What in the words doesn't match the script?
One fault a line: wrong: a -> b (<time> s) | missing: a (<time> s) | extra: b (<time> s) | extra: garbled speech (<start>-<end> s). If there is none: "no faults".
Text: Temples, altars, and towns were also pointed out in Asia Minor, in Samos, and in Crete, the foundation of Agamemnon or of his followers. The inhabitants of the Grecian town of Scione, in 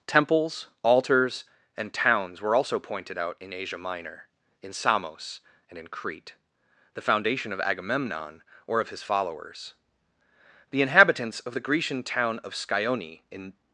no faults